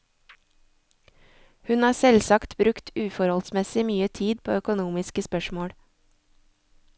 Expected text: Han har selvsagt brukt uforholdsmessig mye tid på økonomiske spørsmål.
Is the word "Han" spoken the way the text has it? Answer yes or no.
no